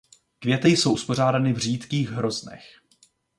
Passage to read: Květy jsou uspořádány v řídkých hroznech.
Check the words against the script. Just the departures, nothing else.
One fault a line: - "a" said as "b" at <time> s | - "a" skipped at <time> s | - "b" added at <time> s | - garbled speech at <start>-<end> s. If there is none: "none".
none